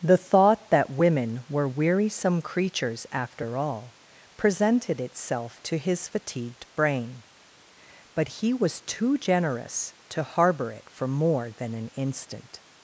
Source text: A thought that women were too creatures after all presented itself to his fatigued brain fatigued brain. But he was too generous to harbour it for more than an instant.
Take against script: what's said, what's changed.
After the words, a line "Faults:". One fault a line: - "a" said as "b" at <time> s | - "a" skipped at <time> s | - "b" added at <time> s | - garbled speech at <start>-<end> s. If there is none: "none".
The thought that women were wearisome creatures after all presented itself to his fatigued brain. But he was too generous to harbour it for more than an instant.
Faults:
- "A" said as "The" at 0.0 s
- "too" said as "wearisome" at 1.7 s
- "fatigued brain" skipped at 7.2 s